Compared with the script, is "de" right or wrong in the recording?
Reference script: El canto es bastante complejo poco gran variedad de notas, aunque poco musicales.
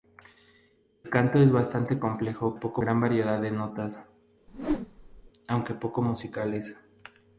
right